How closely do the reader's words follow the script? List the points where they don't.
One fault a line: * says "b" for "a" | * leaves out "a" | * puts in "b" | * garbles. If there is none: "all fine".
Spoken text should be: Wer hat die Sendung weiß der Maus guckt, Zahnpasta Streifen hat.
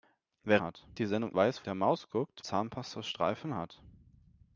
all fine